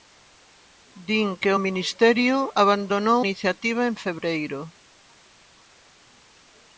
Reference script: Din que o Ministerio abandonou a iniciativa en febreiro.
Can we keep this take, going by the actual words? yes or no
no